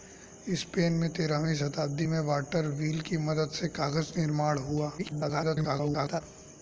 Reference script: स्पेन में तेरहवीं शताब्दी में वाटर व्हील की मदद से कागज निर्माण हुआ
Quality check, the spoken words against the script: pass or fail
fail